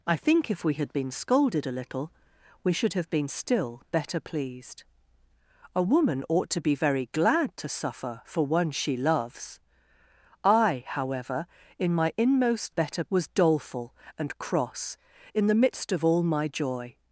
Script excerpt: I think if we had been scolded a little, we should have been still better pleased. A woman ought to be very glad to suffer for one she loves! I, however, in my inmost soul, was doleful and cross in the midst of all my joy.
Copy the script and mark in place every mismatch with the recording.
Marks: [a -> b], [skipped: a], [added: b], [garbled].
I think if we had been scolded a little, we should have been still better pleased. A woman ought to be very glad to suffer for one she loves! I, however, in my inmost [soul, -> better] was doleful and cross in the midst of all my joy.